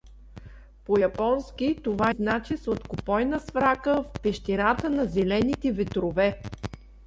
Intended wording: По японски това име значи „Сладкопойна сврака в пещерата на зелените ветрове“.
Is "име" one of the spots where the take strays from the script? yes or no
yes